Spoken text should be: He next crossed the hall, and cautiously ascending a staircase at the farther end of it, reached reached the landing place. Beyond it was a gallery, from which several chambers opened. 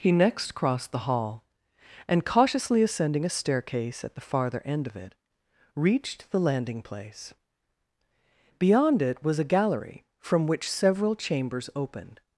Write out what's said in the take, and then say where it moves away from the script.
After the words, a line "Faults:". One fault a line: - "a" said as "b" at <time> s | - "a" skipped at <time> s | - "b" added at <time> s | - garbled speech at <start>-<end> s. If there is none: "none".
He next crossed the hall, and cautiously ascending a staircase at the farther end of it, reached the landing place. Beyond it was a gallery, from which several chambers opened.
Faults:
- "reached" skipped at 6.3 s